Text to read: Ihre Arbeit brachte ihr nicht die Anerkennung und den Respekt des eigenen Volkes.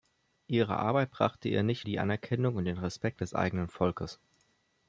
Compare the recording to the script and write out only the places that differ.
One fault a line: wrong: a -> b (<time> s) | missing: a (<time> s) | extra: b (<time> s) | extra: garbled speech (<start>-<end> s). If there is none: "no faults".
no faults